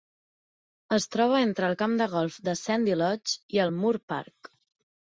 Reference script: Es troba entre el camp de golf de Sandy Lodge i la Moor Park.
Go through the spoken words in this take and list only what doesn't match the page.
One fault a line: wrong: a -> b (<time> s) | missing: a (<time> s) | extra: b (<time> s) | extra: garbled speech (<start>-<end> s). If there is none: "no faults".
wrong: la -> el (3.7 s)